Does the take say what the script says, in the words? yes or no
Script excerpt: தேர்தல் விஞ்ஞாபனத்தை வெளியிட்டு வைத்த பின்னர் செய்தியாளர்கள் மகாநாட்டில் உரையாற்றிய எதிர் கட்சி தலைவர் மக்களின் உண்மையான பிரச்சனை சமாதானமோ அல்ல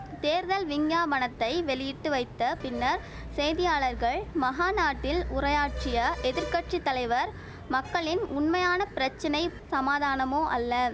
yes